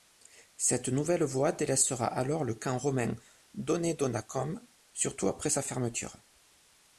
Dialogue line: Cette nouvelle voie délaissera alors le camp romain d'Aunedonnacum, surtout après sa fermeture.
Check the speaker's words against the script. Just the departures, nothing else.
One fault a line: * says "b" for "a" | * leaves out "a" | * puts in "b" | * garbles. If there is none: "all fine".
all fine